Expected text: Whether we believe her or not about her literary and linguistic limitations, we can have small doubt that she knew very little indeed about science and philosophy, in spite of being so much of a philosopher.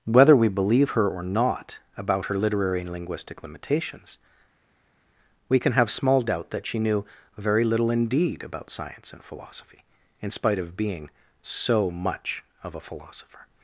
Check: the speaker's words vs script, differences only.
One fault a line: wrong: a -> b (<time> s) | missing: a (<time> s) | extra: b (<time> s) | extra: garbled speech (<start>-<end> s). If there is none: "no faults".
no faults